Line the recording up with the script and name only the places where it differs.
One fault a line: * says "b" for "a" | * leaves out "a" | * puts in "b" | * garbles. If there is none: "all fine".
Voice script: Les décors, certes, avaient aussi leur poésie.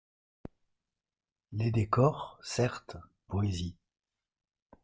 * leaves out "avaient aussi leur"